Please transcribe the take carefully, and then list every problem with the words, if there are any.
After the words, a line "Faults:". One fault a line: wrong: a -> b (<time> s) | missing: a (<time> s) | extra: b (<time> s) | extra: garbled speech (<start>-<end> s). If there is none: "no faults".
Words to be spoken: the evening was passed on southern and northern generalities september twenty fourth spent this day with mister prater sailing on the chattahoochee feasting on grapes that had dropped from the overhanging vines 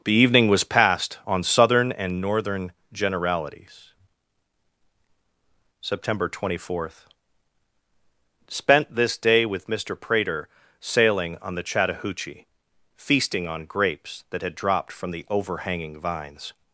the evening was passed on southern and northern generalities september twenty fourth spent this day with mister prater sailing on the chattahoochee feasting on grapes that had dropped from the overhanging vines
Faults:
no faults